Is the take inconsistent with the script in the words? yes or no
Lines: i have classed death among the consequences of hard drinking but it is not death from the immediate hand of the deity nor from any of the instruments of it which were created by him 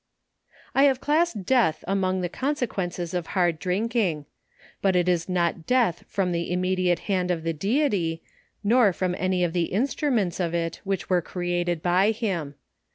no